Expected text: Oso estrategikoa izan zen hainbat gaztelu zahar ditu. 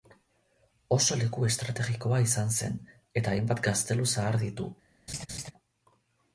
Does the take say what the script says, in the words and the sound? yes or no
no